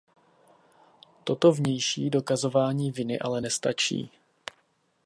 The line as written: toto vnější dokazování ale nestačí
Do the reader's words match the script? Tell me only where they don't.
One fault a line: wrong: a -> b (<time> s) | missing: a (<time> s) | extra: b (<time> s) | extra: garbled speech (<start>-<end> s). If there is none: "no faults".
extra: viny (2.9 s)